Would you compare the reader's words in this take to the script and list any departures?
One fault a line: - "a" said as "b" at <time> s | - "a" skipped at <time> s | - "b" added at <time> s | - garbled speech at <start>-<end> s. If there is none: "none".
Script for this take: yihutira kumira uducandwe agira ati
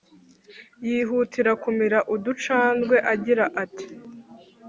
none